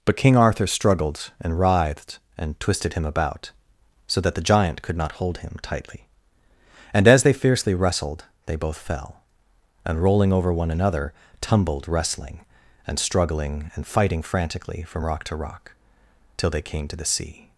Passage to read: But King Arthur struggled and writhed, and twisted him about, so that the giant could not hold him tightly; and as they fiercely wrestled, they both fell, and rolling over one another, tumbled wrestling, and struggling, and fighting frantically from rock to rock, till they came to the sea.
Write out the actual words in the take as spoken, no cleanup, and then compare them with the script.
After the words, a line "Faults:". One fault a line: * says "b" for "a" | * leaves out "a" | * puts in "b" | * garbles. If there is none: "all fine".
But King Arthur struggled and writhed, and twisted him about, so that the giant could not hold him tightly; and as they fiercely wrestled, they both fell, and rolling over one another, tumbled wrestling, and struggling, and fighting frantically from rock to rock, till they came to the sea.
Faults:
all fine